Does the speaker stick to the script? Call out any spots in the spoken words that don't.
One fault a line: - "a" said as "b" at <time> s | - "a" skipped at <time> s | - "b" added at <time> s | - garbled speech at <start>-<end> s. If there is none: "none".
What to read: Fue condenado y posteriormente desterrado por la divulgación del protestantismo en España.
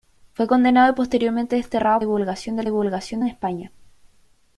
- "por la" skipped at 2.0 s
- "protestantismo" said as "divulgación" at 2.7 s